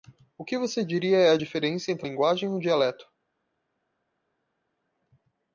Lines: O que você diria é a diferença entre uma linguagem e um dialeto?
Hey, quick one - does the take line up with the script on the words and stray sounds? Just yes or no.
no